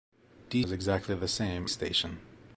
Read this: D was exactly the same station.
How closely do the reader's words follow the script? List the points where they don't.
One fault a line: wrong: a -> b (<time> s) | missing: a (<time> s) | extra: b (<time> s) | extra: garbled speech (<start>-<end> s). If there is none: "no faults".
no faults